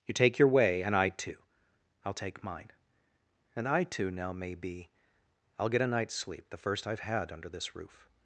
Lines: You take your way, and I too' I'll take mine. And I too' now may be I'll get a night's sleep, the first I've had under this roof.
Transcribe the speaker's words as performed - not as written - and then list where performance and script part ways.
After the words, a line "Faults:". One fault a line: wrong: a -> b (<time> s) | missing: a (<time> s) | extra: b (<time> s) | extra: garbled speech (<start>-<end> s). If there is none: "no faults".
You take your way, and I too' I'll take mine. And I too' now may be I'll get a night's sleep, the first I've had under this roof.
Faults:
no faults